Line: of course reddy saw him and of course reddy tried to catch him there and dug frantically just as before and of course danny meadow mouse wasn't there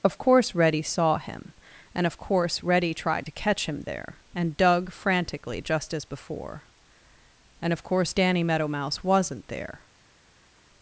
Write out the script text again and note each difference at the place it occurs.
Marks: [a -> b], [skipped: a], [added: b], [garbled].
of course reddy saw him and of course reddy tried to catch him there and dug frantically just as before and of course danny meadow mouse wasn't there